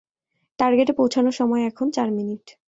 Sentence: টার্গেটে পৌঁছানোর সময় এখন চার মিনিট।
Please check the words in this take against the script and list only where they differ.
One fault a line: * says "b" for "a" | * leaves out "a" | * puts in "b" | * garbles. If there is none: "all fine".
all fine